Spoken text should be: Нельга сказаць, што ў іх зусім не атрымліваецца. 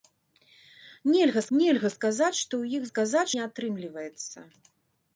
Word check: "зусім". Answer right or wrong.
wrong